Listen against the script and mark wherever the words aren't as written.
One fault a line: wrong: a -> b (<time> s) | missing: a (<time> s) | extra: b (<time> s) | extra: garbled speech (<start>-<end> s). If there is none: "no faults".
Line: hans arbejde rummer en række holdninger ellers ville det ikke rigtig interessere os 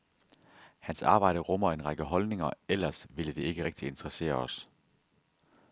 no faults